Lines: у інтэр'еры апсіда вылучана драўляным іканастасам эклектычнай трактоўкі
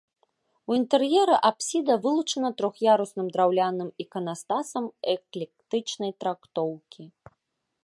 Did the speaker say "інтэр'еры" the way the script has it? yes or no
yes